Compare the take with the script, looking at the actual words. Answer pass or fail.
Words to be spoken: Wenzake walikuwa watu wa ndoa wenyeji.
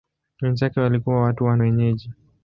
fail